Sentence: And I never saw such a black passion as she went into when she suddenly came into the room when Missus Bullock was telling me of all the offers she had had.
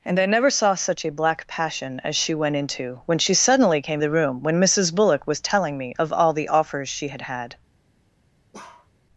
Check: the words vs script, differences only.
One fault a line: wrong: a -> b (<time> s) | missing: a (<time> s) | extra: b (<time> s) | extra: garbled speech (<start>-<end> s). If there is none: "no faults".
missing: into (4.0 s)